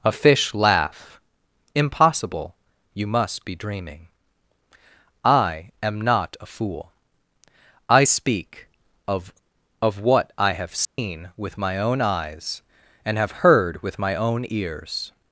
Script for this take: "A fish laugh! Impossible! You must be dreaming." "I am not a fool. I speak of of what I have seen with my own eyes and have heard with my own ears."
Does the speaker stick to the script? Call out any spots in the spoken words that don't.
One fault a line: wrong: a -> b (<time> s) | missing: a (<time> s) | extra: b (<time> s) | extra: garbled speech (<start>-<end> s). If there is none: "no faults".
no faults